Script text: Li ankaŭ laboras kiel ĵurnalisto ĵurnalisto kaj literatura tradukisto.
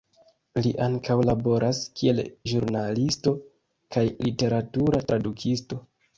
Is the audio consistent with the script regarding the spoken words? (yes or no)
no